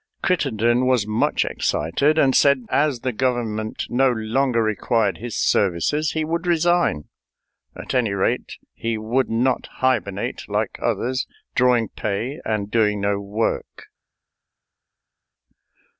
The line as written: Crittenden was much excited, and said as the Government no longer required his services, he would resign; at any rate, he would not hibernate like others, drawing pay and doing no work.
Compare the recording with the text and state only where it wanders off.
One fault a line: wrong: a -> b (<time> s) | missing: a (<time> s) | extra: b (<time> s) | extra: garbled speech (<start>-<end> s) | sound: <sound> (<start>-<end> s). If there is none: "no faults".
no faults